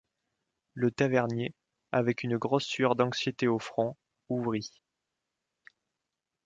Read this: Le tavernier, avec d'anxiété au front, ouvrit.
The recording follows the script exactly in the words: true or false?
false